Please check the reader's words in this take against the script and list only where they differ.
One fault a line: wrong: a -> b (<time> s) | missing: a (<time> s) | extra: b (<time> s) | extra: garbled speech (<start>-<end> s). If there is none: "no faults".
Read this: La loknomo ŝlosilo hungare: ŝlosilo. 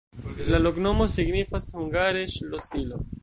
wrong: ŝlosilo -> signifas (1.2 s)